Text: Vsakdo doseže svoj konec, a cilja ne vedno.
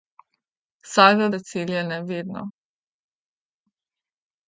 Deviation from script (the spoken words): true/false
true